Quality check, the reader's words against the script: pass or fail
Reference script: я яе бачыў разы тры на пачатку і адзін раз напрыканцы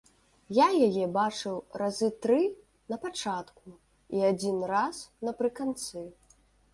pass